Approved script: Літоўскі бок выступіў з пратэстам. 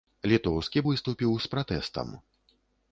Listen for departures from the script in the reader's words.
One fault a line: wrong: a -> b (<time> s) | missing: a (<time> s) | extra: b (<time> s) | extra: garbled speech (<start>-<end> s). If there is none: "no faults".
missing: бок (0.8 s)